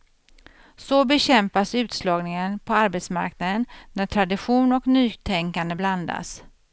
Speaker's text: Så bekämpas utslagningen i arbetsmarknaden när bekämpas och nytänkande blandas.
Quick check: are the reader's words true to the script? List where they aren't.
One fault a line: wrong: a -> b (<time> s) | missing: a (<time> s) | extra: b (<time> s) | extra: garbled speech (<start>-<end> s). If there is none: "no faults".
wrong: i -> på (2.6 s)
wrong: bekämpas -> tradition (4.0 s)